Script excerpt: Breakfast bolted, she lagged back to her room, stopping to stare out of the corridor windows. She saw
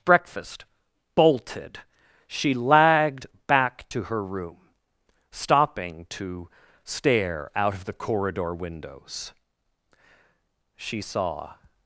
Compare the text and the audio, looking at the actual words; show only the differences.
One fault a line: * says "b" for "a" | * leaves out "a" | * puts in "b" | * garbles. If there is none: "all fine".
all fine